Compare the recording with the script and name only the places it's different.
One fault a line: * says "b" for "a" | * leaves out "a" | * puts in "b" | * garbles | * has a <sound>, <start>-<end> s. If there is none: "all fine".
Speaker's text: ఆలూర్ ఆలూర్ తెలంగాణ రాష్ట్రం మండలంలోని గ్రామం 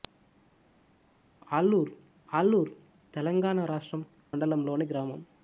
all fine